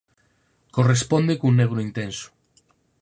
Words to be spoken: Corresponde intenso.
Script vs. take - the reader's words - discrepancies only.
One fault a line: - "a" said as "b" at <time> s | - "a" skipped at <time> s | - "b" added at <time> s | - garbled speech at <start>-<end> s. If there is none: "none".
- "cun negro" added at 1.4 s